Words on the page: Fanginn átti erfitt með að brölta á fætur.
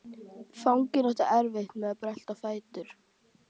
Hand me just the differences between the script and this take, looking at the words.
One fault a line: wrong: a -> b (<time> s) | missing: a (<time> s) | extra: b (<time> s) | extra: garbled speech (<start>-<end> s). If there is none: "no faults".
no faults